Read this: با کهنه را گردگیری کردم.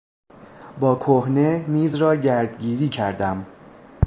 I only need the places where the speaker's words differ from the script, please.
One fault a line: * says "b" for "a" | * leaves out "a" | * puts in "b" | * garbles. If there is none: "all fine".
* puts in "میز"